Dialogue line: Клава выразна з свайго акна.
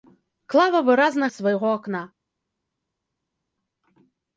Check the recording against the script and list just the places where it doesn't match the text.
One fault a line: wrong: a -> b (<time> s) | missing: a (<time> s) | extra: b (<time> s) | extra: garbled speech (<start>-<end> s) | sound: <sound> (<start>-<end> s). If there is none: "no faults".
no faults